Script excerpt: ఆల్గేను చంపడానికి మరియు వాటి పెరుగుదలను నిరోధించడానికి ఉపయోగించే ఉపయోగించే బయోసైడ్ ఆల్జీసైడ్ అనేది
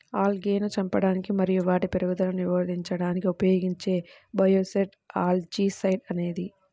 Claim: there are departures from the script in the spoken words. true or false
true